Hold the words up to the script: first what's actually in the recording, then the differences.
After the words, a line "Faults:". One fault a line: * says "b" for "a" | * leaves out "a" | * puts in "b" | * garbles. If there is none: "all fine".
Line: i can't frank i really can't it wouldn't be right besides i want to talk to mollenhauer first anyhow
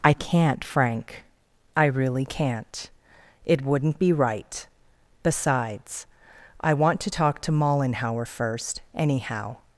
i can't frank i really can't it wouldn't be right besides i want to talk to mollenhauer first anyhow
Faults:
all fine